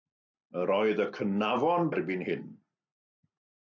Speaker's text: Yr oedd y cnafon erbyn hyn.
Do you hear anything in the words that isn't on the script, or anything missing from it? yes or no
no